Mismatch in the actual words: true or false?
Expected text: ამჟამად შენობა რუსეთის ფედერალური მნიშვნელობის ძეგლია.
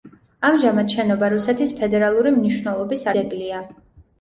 false